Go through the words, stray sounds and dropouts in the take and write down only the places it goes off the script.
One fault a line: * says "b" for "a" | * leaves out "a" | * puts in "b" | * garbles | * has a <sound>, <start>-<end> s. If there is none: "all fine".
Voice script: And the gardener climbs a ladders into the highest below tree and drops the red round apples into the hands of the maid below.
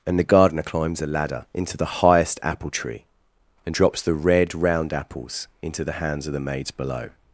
* says "ladder" for "ladders"
* says "apple" for "below"
* says "maids" for "maid"